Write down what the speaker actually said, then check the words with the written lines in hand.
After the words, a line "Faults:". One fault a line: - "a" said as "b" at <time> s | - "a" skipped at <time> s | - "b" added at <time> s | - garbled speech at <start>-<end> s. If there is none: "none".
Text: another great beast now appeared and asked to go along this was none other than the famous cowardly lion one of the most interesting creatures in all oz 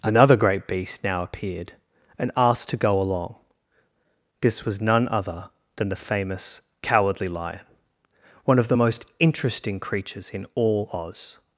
another great beast now appeared and asked to go along this was none other than the famous cowardly lion one of the most interesting creatures in all oz
Faults:
none